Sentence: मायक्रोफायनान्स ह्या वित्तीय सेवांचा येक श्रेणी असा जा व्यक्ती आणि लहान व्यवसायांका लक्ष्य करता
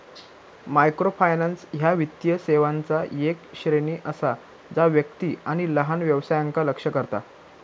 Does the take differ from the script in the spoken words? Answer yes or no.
no